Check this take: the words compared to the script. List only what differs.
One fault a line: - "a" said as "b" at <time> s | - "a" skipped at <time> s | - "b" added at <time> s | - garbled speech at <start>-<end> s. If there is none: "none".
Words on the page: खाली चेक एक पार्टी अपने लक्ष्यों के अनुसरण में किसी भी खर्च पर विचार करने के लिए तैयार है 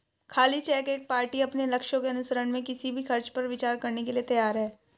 none